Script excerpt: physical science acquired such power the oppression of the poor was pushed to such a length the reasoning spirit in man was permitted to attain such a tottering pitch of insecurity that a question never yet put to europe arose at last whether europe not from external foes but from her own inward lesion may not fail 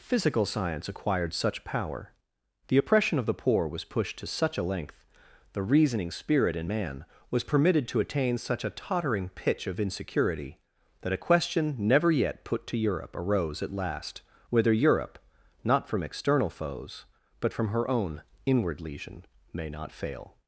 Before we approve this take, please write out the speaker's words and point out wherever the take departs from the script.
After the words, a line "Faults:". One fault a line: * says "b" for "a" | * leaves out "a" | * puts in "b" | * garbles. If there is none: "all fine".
physical science acquired such power the oppression of the poor was pushed to such a length the reasoning spirit in man was permitted to attain such a tottering pitch of insecurity that a question never yet put to europe arose at last whether europe not from external foes but from her own inward lesion may not fail
Faults:
all fine